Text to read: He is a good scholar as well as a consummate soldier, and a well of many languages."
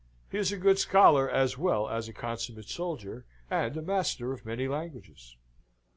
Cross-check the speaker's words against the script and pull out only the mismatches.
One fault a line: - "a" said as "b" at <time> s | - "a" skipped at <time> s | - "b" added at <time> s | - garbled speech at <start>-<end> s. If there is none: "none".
- "well" said as "master" at 3.8 s